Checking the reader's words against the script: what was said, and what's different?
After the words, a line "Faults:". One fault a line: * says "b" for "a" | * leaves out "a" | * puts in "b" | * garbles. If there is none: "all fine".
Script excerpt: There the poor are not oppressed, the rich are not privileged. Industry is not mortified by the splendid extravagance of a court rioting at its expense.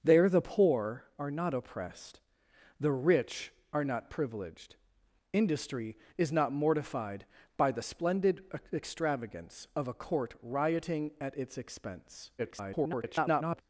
There the poor are not oppressed, the rich are not privileged. Industry is not mortified by the splendid extravagance of a court rioting at its expense. [garbled]
Faults:
* garbles